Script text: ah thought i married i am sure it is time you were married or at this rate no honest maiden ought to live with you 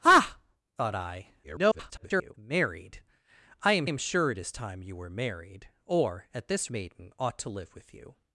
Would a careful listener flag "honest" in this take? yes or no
yes